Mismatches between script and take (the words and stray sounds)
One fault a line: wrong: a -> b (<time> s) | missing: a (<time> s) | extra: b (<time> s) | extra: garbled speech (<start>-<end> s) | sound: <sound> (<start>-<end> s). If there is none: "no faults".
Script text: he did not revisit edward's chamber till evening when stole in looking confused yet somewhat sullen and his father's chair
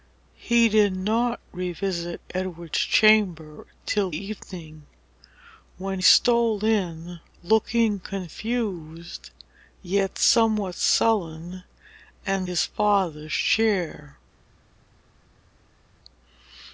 no faults